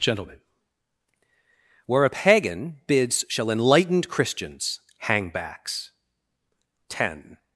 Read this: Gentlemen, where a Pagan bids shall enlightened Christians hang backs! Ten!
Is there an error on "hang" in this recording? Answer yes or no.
no